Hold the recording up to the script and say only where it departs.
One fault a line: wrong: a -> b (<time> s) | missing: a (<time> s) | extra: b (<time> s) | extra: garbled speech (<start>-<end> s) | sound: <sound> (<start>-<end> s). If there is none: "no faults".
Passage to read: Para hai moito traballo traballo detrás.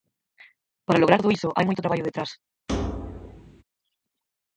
extra: lograr todo iso (1.0 s)
missing: traballo (2.1 s)
sound: thud (2.7-3.6 s)